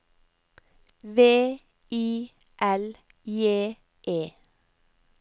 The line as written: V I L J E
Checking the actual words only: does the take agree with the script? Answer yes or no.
yes